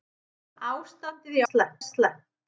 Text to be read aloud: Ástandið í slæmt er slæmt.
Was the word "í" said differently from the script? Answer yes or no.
no